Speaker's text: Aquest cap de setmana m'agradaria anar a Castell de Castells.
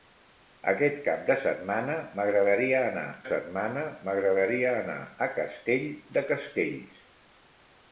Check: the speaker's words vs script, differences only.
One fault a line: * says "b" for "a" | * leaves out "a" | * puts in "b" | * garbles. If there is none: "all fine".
* puts in "setmana m'agradaria anar"